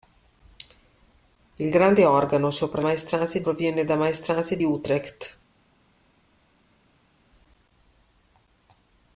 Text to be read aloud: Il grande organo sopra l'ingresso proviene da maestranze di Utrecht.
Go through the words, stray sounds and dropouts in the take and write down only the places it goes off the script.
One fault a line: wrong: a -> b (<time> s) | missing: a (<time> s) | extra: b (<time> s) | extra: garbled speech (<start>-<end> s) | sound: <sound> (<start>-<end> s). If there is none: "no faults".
wrong: l'ingresso -> maestranze (2.8 s)
missing: di (4.6 s)